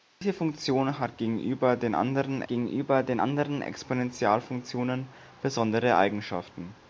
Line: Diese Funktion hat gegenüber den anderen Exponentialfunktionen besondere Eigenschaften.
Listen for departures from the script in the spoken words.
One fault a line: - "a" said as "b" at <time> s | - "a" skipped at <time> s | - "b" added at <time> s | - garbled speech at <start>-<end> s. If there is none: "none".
- "gegenüber den anderen" added at 2.5 s